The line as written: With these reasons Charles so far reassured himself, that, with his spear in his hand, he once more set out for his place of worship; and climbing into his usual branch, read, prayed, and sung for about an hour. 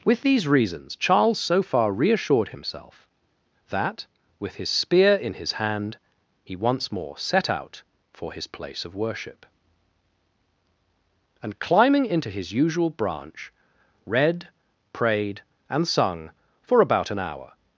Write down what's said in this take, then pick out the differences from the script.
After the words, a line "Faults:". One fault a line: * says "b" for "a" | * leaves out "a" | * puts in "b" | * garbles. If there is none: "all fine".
With these reasons Charles so far reassured himself, that, with his spear in his hand, he once more set out for his place of worship; and climbing into his usual branch, read, prayed, and sung for about an hour.
Faults:
all fine